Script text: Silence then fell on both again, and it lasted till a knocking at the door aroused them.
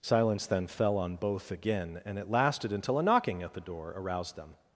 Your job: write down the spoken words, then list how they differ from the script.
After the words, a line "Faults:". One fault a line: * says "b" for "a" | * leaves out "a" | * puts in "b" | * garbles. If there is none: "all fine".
Silence then fell on both again, and it lasted until a knocking at the door aroused them.
Faults:
* says "until" for "till"